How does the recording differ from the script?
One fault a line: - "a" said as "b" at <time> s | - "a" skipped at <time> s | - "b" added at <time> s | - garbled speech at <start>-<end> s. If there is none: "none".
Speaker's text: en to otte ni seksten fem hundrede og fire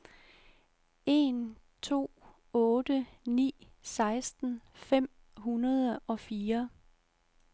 none